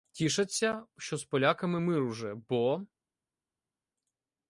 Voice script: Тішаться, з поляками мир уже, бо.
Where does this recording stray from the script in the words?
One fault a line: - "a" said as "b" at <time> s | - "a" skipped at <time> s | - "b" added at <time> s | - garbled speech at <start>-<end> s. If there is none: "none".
- "що" added at 1.0 s